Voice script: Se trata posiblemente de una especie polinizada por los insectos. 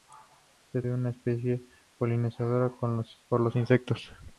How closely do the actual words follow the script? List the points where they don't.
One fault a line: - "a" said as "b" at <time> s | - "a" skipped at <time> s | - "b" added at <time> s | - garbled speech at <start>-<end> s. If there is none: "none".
- "trata posiblemente" skipped at 0.8 s